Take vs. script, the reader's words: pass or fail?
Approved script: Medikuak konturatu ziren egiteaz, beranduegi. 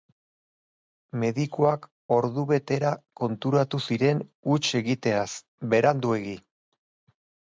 fail